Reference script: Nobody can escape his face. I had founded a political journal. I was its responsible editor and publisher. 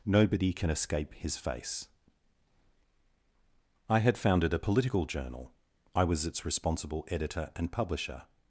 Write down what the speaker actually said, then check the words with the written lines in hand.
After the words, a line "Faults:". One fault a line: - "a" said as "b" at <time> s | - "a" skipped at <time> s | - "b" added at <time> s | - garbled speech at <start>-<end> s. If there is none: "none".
Nobody can escape his face. I had founded a political journal. I was its responsible editor and publisher.
Faults:
none